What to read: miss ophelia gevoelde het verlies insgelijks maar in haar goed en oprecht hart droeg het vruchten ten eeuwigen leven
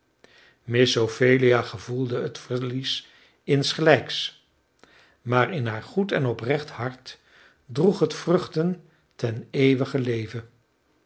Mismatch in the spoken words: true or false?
false